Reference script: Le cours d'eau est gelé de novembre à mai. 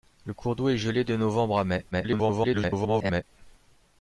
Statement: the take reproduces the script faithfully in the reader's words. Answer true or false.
false